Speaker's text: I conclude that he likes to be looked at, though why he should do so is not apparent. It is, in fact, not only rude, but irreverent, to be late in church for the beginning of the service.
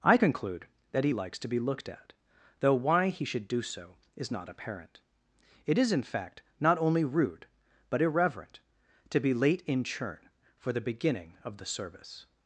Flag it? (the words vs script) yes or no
yes